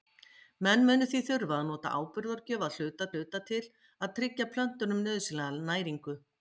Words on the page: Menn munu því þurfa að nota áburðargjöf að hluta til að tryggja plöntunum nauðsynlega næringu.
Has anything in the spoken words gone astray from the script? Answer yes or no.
yes